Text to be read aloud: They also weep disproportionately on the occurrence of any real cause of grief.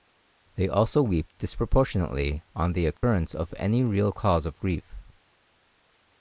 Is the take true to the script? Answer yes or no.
yes